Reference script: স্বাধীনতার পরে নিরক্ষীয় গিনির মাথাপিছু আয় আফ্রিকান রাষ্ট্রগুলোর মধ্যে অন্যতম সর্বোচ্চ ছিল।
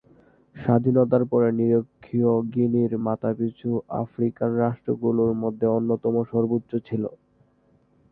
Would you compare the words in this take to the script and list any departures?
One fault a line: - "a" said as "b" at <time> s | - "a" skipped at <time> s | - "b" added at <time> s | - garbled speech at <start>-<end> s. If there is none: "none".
- "আয়" skipped at 3.7 s